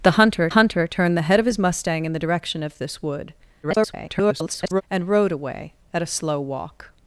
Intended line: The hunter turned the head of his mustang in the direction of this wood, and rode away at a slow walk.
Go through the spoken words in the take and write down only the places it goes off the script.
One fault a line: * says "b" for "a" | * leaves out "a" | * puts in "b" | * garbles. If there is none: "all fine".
* puts in "hunter"
* garbles